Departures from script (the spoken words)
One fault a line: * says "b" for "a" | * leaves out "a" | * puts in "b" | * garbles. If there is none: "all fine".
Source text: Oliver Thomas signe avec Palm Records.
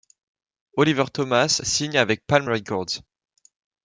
all fine